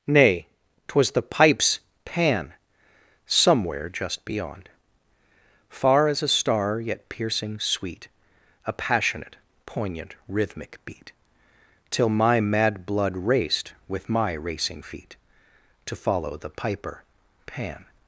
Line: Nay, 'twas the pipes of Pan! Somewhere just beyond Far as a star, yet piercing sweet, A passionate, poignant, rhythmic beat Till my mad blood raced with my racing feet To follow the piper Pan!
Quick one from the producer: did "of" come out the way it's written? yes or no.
no